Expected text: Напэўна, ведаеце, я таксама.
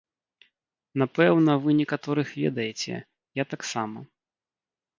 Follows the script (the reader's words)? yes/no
no